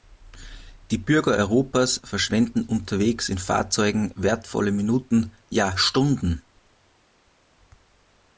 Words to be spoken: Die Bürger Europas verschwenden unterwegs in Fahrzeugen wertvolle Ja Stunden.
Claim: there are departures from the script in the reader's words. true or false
true